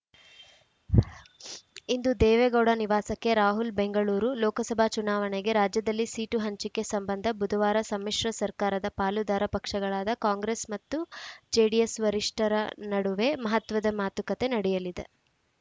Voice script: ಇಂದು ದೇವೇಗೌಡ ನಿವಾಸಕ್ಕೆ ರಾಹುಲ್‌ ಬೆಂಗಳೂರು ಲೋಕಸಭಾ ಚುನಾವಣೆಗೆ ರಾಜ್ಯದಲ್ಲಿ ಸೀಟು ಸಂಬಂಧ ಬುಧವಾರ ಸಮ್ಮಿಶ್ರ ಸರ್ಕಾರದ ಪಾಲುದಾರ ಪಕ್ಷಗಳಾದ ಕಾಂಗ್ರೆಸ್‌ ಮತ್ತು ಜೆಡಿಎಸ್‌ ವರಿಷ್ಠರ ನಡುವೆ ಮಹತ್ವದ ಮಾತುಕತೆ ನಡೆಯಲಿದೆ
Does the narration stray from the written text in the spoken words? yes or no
yes